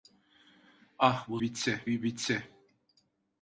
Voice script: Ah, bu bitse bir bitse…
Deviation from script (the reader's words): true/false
false